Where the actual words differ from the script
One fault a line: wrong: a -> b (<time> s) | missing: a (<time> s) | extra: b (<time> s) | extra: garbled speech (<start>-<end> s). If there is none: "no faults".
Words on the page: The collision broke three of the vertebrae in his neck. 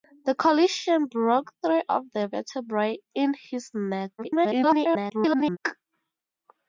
extra: garbled speech (4.2-5.6 s)